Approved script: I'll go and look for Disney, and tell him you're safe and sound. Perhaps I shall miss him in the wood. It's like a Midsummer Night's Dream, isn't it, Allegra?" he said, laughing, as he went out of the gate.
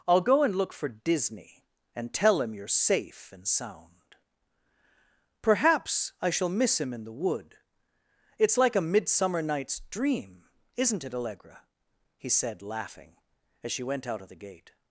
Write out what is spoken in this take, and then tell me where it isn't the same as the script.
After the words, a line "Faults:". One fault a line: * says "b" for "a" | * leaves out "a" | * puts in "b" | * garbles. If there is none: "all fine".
I'll go and look for Disney, and tell him you're safe and sound. Perhaps I shall miss him in the wood. It's like a Midsummer Night's Dream, isn't it, Allegra?" he said, laughing, as she went out of the gate.
Faults:
* says "she" for "he"